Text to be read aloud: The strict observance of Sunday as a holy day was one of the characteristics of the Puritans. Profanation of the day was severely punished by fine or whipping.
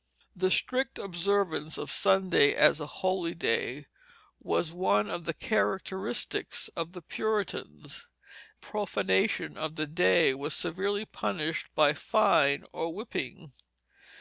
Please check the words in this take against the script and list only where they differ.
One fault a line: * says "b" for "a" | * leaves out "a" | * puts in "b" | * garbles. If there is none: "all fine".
all fine